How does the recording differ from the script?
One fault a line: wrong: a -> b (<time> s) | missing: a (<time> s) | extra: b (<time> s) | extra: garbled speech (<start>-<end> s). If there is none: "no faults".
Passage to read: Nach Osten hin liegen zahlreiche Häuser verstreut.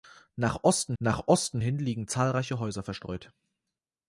extra: nach Osten (1.0 s)